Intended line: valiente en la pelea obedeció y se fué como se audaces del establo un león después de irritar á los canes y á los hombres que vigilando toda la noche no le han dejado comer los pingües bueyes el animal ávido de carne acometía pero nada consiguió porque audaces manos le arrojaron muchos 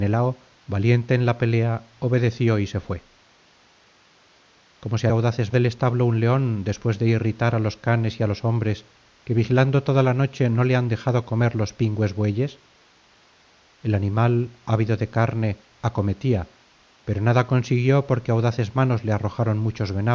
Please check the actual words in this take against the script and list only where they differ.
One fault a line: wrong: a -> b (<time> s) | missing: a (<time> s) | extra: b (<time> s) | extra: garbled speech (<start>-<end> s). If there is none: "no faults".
no faults